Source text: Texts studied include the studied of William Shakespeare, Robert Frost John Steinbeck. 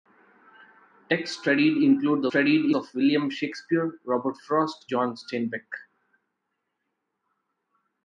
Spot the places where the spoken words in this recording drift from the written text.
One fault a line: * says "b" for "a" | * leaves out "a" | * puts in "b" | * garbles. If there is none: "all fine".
all fine